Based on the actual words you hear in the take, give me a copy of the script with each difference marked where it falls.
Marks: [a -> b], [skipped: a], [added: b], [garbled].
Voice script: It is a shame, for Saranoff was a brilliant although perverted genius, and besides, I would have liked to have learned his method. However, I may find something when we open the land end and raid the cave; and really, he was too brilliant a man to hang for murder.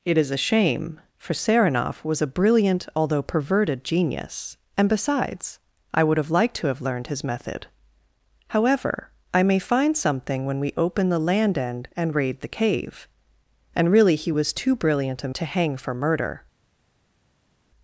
It is a shame, for Saranoff was a brilliant although perverted genius, and besides, I would have liked to have learned his method. However, I may find something when we open the land end and raid the cave; and really, he was too brilliant a [skipped: man] to hang for murder.